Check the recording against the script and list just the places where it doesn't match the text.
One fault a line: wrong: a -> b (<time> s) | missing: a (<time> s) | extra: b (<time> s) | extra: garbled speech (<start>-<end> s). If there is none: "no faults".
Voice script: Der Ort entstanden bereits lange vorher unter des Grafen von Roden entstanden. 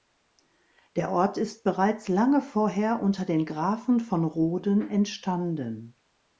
wrong: entstanden -> ist (1.4 s)
wrong: des -> den (3.2 s)